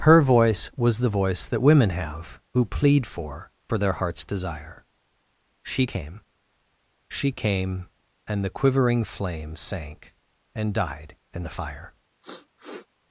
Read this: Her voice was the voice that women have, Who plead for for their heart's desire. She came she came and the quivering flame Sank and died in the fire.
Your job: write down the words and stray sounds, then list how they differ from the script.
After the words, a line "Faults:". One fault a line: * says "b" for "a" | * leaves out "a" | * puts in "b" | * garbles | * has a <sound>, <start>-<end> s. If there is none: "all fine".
Her voice was the voice that women have, Who plead for for their heart's desire. She came she came and the quivering flame Sank and died in the fire.
Faults:
* has a sniff, 12.2-12.9 s